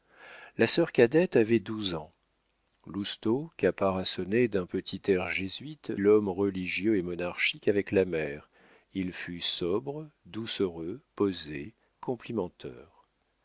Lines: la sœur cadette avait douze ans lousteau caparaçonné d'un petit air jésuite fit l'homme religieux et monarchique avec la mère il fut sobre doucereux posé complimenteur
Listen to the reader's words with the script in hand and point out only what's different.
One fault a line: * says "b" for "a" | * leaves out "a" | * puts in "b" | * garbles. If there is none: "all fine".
* leaves out "fit"